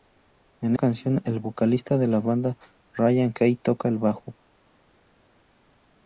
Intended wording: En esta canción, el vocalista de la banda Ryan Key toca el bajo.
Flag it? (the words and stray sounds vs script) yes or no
yes